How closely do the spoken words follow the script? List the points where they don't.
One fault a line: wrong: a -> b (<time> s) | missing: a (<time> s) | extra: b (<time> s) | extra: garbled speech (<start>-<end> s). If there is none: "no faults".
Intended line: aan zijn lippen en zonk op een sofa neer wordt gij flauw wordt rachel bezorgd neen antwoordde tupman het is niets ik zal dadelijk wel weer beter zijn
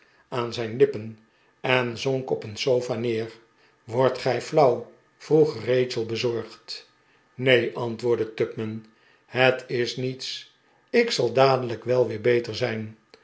wrong: wordt -> vroeg (5.2 s)